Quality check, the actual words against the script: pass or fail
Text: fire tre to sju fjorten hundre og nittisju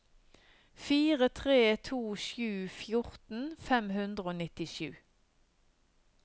fail